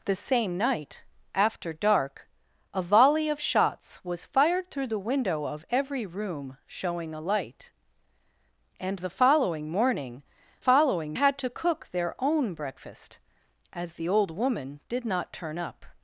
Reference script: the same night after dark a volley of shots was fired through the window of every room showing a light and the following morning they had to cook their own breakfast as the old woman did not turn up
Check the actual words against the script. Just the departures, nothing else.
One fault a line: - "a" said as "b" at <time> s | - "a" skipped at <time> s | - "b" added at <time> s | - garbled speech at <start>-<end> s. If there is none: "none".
- "they" said as "following" at 10.6 s